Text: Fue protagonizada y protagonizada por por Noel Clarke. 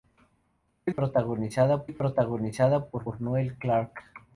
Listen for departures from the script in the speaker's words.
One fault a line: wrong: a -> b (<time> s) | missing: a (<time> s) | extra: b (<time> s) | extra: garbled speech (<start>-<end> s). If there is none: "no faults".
no faults